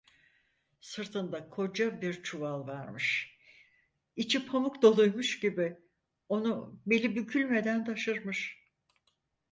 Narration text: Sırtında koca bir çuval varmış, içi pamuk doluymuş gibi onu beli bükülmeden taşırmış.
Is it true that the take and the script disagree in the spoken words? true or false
false